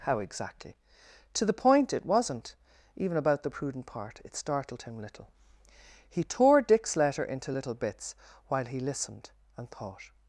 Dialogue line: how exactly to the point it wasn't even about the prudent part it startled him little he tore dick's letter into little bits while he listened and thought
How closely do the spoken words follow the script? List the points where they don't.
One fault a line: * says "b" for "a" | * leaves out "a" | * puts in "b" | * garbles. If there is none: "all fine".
all fine